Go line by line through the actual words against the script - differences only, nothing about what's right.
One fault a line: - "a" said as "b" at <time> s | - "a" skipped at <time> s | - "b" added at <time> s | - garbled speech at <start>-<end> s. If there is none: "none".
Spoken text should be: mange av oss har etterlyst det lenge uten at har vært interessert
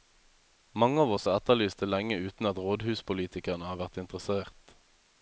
- "rådhuspolitikerne" added at 2.7 s